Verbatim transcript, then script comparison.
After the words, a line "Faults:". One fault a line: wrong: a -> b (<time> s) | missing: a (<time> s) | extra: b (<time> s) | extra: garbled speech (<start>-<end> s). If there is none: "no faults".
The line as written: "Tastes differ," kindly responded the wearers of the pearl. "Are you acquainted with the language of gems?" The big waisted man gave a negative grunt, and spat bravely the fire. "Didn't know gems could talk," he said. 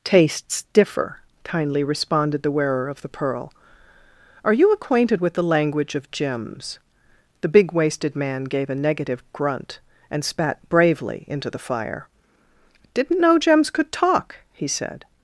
"Tastes differ," kindly responded the wearer of the pearl. "Are you acquainted with the language of gems?" The big waisted man gave a negative grunt, and spat bravely into the fire. "Didn't know gems could talk," he said.
Faults:
wrong: wearers -> wearer (2.5 s)
extra: into (11.3 s)